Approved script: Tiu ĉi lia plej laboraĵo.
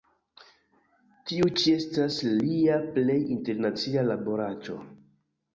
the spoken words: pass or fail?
fail